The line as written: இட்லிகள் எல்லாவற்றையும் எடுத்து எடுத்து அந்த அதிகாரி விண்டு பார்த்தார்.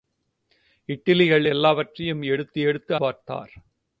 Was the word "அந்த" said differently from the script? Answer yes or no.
yes